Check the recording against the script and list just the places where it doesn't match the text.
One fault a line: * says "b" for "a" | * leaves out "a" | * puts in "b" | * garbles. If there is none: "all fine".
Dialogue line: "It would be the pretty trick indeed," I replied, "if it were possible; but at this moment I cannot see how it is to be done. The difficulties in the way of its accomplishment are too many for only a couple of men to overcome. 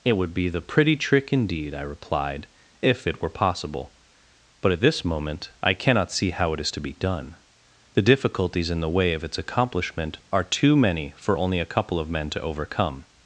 all fine